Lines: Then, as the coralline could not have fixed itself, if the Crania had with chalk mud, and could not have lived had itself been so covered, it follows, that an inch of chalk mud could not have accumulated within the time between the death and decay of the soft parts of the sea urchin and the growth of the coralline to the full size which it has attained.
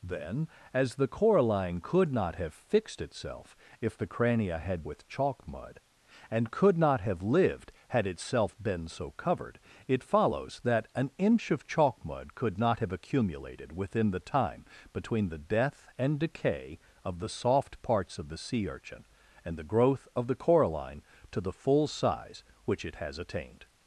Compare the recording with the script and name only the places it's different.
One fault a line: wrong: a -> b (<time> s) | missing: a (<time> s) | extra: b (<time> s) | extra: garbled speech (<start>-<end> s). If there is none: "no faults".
no faults